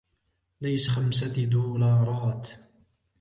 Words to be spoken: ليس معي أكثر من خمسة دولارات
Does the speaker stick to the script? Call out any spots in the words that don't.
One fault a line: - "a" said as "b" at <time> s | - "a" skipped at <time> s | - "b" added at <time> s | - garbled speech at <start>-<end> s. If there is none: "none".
- "معي أكثر من" skipped at 0.9 s